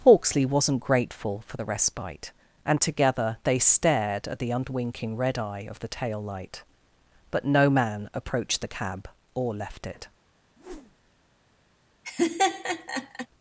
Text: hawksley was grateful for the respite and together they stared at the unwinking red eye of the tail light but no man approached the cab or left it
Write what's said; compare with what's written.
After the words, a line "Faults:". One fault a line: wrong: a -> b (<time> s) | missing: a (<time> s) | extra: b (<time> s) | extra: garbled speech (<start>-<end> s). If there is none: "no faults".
hawksley wasn't grateful for the respite and together they stared at the unwinking red eye of the tail light but no man approached the cab or left it
Faults:
wrong: was -> wasn't (0.5 s)